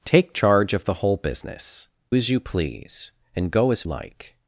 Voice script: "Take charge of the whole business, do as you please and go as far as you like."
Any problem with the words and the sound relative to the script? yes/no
yes